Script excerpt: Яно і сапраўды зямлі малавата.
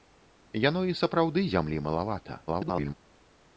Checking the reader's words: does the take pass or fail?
fail